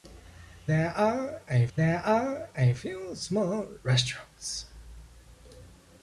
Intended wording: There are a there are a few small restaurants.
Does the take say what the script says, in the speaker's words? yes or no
yes